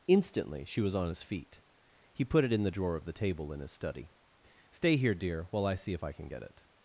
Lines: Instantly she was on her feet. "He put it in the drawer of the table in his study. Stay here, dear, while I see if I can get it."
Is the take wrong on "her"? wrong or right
wrong